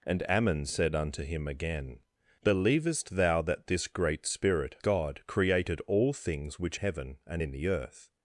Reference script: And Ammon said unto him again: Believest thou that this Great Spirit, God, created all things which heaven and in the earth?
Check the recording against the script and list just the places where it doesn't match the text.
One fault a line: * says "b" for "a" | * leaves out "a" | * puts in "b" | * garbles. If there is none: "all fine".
all fine